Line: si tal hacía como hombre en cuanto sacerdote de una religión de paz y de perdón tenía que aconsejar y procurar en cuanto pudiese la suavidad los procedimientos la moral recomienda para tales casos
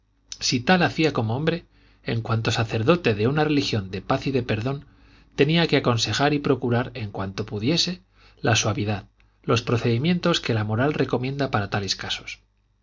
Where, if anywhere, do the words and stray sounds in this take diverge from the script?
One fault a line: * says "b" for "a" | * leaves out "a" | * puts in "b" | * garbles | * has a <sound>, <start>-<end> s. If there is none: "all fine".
* puts in "que"